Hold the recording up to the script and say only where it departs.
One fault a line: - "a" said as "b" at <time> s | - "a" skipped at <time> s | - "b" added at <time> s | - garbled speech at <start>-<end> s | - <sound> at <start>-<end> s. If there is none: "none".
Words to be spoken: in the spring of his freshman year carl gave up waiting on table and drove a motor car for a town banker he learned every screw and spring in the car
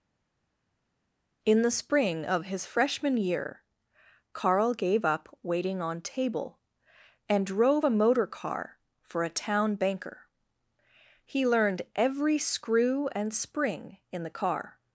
none